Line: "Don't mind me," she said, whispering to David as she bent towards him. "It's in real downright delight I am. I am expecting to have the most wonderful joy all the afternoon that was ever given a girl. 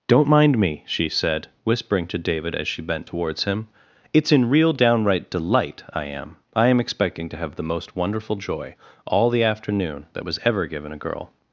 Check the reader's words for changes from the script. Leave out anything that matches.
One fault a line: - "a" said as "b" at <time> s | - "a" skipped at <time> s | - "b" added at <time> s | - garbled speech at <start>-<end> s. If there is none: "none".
none